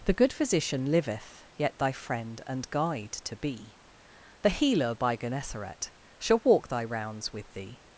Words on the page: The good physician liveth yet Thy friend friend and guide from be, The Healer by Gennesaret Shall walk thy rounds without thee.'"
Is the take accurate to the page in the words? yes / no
no